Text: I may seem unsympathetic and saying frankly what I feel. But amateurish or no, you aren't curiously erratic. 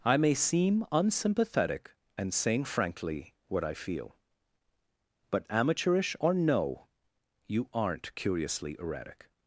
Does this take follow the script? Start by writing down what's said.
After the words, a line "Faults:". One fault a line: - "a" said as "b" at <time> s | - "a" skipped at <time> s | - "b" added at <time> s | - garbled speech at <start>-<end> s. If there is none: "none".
I may seem unsympathetic and saying frankly what I feel. But amateurish or no, you aren't curiously erratic.
Faults:
none